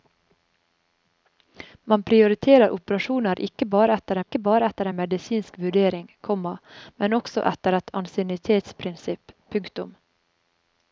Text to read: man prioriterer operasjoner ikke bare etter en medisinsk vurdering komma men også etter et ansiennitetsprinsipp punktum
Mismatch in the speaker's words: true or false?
true